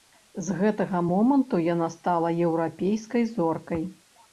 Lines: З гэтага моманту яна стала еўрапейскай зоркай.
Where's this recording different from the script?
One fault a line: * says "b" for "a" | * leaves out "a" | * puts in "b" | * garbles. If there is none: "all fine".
all fine